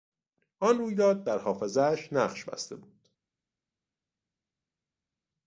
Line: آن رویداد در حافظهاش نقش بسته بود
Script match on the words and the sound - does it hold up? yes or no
yes